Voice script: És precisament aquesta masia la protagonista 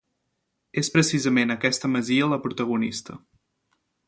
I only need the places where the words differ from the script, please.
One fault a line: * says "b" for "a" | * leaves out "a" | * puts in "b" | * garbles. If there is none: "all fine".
all fine